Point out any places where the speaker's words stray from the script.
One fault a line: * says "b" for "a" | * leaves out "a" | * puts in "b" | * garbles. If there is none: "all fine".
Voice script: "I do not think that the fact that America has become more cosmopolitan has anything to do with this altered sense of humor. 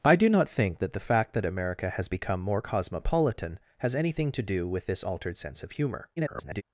* garbles